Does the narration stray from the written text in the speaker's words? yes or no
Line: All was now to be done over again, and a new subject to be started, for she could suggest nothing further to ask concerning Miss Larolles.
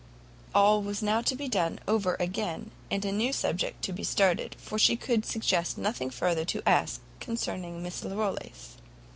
no